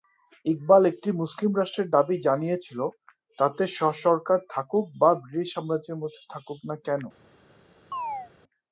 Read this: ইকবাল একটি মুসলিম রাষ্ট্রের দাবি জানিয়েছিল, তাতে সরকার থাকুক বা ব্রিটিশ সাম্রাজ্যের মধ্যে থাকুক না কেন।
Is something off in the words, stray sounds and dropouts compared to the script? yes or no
yes